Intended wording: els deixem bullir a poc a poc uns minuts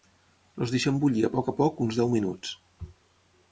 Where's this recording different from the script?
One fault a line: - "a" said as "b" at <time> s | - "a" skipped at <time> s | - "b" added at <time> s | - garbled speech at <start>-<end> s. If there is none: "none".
- "deu" added at 2.0 s